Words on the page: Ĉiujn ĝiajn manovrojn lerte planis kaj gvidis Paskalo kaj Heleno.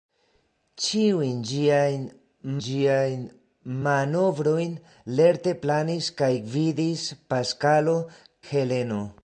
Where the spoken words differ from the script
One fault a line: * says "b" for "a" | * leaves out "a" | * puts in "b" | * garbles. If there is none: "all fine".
* puts in "ĝiajn"
* leaves out "kaj"